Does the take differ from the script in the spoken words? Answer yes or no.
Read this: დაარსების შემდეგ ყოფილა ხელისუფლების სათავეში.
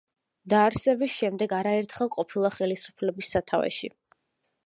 yes